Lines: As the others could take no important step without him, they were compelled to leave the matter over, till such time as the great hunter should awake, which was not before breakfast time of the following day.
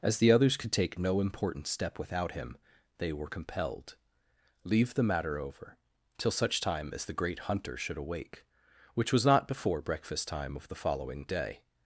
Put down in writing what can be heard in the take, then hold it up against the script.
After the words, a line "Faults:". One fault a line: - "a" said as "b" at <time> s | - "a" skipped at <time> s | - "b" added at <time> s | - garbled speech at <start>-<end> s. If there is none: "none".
As the others could take no important step without him, they were compelled leave the matter over, till such time as the great hunter should awake, which was not before breakfast time of the following day.
Faults:
- "to" skipped at 4.0 s